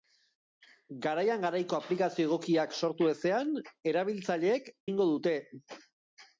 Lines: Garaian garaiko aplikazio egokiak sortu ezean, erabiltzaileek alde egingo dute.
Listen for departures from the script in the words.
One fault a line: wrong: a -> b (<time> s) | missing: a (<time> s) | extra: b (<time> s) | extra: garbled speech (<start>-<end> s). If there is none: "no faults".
missing: alde (4.7 s)